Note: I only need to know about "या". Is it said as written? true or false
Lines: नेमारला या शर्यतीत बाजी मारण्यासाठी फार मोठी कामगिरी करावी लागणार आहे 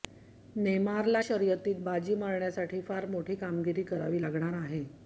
false